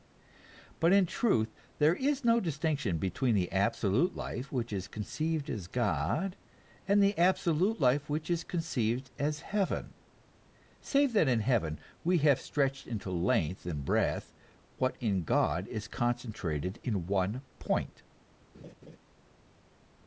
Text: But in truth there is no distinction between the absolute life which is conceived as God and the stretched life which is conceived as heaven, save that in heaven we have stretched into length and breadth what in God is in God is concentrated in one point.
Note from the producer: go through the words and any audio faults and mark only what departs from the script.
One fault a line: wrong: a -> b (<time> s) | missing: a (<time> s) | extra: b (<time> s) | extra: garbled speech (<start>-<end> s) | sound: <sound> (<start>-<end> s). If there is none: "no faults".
wrong: stretched -> absolute (7.2 s)
missing: in God is (15.9 s)
sound: laugh (18.5-19.0 s)